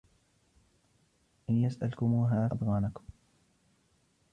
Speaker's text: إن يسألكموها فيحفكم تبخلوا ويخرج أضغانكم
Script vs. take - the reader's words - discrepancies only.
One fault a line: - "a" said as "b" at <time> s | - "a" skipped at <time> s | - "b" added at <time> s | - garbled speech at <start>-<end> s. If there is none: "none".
- "فيحفكم تبخلوا ويخرج" skipped at 2.5 s